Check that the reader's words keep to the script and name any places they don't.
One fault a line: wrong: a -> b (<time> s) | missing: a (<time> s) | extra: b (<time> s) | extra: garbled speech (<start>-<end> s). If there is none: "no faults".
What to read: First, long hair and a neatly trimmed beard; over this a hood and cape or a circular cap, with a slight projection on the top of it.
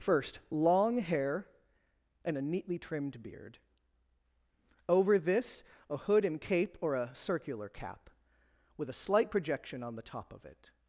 no faults